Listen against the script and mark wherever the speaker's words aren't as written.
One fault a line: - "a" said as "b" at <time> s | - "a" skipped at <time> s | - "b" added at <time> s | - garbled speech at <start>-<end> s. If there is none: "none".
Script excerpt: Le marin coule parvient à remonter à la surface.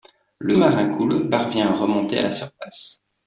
none